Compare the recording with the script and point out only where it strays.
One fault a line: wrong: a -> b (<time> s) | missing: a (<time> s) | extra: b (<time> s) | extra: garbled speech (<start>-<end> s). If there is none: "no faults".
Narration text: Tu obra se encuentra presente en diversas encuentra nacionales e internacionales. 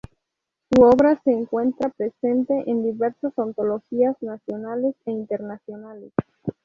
wrong: Tu -> Su (0.7 s)
wrong: encuentra -> antologías (3.4 s)